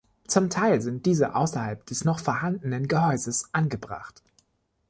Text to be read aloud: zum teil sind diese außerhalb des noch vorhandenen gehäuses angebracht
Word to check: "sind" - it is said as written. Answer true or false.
true